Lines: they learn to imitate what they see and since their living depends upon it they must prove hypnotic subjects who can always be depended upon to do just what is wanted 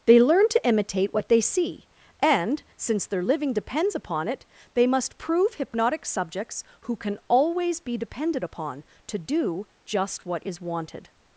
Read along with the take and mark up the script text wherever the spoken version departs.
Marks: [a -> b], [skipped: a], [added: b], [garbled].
they learn to imitate what they see and since their living depends upon it they must prove hypnotic subjects who can always be depended upon to do just what is wanted